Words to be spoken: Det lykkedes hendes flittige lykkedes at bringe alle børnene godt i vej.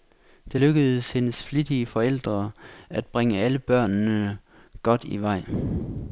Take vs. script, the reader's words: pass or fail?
fail